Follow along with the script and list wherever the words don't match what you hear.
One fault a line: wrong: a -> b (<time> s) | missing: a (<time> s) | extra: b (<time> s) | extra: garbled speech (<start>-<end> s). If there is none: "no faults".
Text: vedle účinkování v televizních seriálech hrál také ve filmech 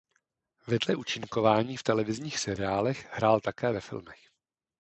no faults